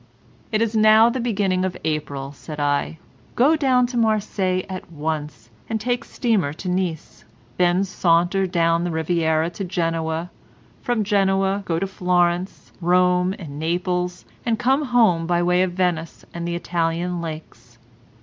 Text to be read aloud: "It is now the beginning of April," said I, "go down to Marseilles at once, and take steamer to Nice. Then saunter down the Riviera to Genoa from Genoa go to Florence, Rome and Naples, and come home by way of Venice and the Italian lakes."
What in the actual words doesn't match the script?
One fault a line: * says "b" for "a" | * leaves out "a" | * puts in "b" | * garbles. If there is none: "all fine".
all fine